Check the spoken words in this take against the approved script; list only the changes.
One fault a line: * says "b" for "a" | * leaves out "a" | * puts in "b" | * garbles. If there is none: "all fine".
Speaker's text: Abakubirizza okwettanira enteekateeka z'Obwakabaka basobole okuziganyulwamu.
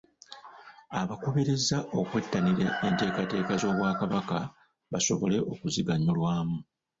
all fine